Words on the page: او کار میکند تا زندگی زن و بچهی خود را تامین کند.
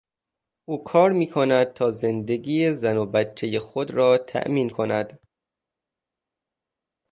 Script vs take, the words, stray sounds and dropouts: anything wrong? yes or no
no